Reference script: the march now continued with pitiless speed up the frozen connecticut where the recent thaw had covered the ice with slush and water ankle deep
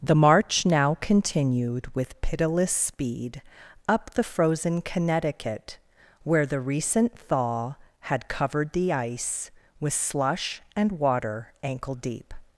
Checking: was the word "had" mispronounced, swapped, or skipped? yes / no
no